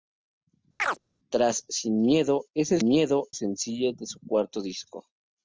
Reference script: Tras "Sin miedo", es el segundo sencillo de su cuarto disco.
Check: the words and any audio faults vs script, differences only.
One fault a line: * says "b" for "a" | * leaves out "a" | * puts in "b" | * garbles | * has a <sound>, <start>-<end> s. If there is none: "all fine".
* has a chirp, 0.8-1.0 s
* says "miedo" for "segundo"